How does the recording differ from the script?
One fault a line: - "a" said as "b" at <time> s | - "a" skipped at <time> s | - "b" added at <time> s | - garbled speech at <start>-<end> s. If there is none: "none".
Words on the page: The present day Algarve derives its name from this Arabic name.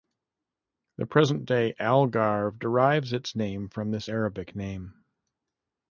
none